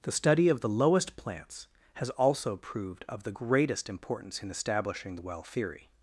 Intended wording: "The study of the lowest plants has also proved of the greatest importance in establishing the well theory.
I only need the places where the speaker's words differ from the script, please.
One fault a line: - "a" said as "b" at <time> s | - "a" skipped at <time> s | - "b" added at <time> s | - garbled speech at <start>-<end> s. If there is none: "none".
none